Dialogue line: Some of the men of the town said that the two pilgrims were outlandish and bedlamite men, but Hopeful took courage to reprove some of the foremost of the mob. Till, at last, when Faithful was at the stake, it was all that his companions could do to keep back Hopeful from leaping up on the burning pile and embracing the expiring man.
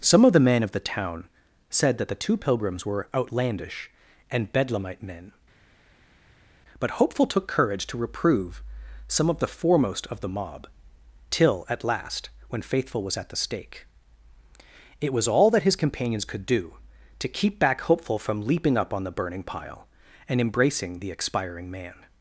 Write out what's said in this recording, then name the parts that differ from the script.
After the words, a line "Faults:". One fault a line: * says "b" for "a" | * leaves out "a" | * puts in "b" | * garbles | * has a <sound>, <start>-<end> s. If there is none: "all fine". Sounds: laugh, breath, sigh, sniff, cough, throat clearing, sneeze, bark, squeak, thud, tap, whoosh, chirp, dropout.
Some of the men of the town said that the two pilgrims were outlandish and bedlamite men, but Hopeful took courage to reprove some of the foremost of the mob. Till, at last, when Faithful was at the stake, it was all that his companions could do to keep back Hopeful from leaping up on the burning pile and embracing the expiring man.
Faults:
all fine